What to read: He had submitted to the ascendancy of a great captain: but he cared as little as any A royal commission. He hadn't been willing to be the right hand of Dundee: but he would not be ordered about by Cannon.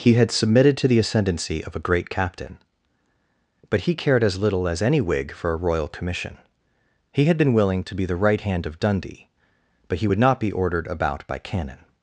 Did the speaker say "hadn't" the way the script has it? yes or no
no